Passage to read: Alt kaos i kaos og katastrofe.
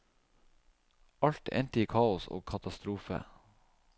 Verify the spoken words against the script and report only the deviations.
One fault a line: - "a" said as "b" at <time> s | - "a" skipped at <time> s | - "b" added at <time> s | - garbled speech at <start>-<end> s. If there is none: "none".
- "kaos" said as "endte" at 1.6 s